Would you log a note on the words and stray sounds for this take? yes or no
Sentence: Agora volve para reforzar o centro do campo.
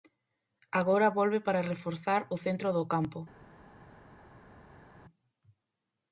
no